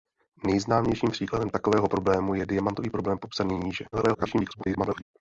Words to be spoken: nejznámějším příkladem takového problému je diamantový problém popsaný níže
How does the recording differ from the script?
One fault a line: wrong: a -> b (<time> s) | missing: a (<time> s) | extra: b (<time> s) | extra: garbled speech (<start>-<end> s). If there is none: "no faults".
extra: garbled speech (3.9-5.0 s)